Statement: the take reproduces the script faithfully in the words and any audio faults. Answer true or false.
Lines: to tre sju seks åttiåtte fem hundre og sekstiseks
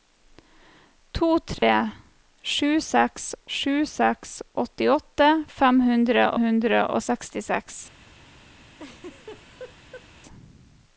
false